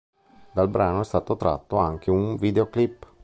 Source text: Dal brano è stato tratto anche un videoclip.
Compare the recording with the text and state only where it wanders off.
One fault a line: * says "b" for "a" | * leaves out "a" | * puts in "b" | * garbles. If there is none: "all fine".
all fine